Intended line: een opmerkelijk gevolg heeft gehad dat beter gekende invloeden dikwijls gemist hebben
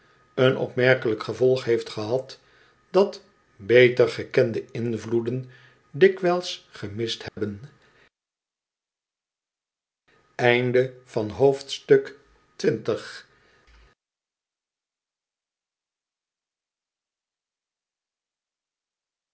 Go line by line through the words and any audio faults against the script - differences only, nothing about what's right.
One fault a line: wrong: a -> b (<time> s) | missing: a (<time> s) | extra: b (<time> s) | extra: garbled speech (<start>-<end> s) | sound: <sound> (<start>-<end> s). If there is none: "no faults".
sound: dropout (7.3-7.4 s)